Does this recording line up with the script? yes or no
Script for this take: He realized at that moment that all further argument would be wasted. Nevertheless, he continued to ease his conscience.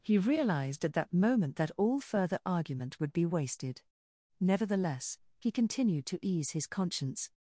yes